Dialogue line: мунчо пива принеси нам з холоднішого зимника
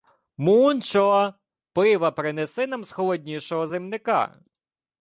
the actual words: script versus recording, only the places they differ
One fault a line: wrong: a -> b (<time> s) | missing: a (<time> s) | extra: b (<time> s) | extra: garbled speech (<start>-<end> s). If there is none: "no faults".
no faults